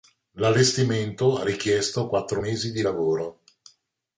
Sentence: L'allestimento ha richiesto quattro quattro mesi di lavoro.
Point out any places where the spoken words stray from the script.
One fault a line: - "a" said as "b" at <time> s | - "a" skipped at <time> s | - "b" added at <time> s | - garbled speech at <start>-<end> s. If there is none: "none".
- "quattro" skipped at 2.4 s